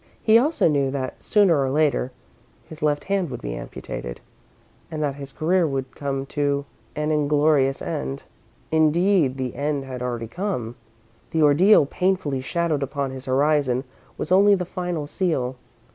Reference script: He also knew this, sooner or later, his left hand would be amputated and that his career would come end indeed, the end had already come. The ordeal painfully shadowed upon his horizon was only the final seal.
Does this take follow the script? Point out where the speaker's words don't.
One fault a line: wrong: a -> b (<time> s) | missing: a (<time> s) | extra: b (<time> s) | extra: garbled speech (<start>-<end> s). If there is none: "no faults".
wrong: this -> that (0.9 s)
extra: to an inglorious (6.3 s)